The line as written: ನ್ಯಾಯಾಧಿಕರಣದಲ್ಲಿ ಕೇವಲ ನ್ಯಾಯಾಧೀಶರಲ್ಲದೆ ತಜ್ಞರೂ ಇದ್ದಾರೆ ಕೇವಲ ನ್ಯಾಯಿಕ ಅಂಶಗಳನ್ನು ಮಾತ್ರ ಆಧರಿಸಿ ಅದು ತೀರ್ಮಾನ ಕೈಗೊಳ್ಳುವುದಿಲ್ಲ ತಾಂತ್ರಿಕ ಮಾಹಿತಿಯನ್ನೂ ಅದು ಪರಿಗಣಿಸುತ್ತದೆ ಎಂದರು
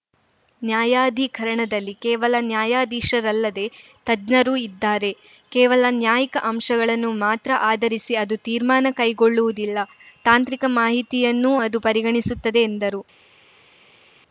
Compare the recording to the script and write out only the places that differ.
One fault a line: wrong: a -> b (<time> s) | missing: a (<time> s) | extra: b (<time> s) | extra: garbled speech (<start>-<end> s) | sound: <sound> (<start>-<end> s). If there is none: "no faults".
no faults